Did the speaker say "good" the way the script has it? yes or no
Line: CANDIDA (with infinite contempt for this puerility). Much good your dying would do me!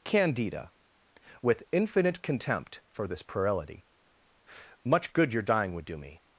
yes